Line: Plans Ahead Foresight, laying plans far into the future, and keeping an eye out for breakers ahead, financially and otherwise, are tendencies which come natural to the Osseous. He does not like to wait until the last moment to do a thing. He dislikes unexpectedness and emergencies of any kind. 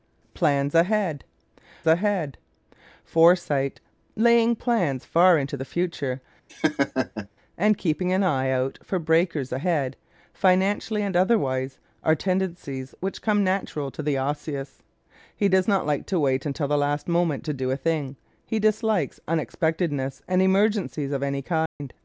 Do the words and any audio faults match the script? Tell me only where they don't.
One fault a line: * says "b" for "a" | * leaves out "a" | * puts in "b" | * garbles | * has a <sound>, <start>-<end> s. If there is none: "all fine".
* puts in "Ahead"
* has a laugh, 6.5-7.3 s
* has a dropout, 21.7-21.8 s